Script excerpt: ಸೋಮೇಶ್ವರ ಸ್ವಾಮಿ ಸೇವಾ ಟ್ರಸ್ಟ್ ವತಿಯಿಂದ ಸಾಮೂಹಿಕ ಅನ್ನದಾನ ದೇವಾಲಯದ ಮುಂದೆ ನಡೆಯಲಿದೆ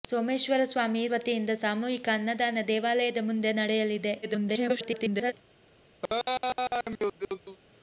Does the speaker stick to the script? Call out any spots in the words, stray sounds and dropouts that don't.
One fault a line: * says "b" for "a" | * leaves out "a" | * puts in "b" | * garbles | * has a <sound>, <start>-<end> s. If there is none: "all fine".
* leaves out "ಸೇವಾ ಟ್ರಸ್ಟ್"
* garbles
* has a laugh, 6.0-7.6 s